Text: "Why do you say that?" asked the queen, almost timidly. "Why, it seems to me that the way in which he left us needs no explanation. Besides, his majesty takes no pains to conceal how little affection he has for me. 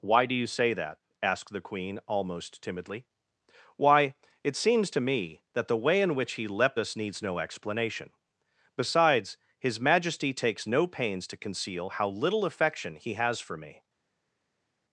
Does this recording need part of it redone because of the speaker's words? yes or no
yes